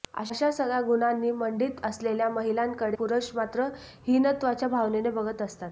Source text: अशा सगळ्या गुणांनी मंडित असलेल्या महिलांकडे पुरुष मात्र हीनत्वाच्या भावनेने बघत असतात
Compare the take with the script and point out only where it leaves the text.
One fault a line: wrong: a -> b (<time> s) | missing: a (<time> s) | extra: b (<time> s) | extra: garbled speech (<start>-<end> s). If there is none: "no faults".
no faults